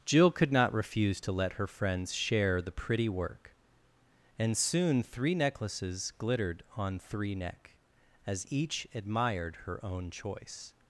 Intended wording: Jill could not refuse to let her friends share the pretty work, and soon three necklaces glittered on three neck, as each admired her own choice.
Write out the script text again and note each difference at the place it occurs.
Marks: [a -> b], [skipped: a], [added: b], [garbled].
Jill could not refuse to let her friends share the pretty work, and soon three necklaces glittered on three neck, as each admired her own choice.